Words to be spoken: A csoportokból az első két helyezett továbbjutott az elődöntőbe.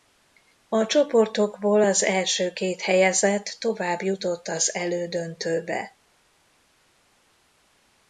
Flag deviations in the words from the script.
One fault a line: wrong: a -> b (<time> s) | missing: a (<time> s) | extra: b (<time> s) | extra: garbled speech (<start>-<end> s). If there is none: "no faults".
no faults